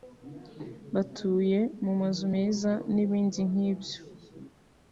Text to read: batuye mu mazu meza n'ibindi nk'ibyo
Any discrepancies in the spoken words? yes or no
no